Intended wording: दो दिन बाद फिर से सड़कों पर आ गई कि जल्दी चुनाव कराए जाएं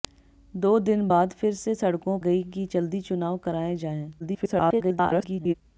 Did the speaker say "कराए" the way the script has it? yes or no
yes